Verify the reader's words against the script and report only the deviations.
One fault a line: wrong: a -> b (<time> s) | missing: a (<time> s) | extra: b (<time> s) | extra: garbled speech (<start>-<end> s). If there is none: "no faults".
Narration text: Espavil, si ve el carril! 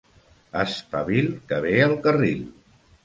wrong: si -> que (1.5 s)